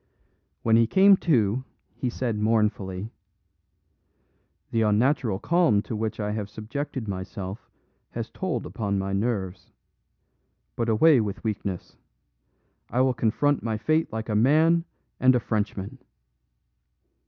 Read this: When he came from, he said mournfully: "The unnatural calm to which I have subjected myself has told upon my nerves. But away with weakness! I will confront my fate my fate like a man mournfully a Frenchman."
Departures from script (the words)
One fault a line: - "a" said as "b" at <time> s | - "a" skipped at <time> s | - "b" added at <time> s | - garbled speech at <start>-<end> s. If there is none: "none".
- "from" said as "to" at 1.2 s
- "my fate" skipped at 14.1 s
- "mournfully" said as "and" at 15.2 s